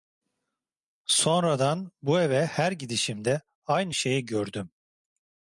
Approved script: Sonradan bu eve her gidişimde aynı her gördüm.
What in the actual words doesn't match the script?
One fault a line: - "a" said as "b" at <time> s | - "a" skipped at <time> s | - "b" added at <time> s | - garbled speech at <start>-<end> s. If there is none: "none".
- "her" said as "şeyi" at 3.9 s